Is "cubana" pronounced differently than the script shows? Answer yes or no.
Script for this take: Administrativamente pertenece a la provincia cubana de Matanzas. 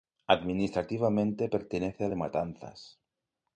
yes